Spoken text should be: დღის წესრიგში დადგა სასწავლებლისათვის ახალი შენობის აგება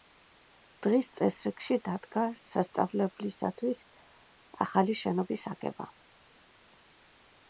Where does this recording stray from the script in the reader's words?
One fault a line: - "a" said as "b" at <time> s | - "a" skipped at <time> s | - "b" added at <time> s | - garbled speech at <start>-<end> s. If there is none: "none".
none